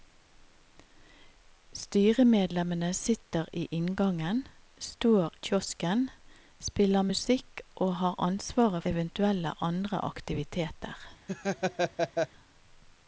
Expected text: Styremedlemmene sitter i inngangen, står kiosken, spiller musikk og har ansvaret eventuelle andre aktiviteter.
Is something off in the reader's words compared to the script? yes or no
no